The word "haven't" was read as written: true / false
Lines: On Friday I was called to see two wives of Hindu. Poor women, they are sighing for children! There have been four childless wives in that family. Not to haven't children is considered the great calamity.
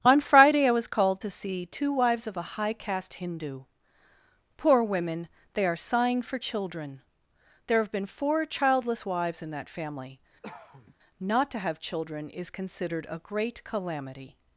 false